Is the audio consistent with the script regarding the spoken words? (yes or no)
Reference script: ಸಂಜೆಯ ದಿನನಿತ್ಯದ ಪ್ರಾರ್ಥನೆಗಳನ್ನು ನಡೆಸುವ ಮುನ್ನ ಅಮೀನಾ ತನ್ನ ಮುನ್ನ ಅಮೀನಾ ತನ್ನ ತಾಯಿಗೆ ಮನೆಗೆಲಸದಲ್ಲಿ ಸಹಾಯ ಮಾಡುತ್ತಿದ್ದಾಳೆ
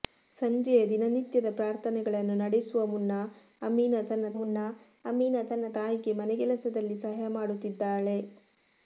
yes